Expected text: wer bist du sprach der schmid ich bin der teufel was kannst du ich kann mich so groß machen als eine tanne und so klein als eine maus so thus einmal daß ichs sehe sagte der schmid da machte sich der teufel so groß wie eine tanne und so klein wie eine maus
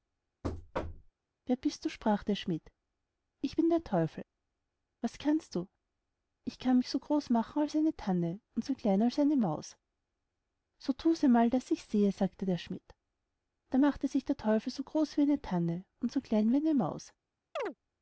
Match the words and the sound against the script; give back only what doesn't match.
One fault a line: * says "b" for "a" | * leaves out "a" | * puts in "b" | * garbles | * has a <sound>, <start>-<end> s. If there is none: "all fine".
* has a thud, 0.4-1.1 s
* has a chirp, 17.6-17.7 s